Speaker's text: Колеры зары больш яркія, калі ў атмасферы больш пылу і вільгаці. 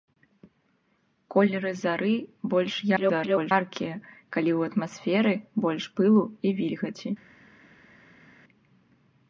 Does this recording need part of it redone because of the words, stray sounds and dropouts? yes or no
yes